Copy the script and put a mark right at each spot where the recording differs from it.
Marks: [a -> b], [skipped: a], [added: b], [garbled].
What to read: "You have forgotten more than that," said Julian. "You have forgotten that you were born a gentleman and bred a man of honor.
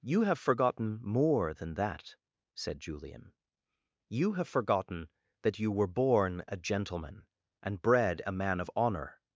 "You have forgotten more than that," said Julian. "You have forgotten that you were born a gentleman and bred a man of honor.